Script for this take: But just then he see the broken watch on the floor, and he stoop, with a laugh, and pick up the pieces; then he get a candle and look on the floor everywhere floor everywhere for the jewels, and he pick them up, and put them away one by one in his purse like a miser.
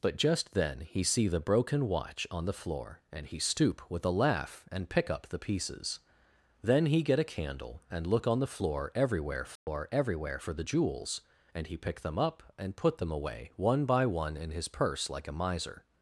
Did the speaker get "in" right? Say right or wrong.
right